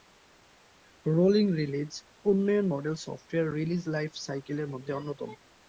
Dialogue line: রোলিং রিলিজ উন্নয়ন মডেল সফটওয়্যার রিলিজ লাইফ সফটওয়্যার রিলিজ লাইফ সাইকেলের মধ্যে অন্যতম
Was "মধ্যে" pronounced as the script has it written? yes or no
yes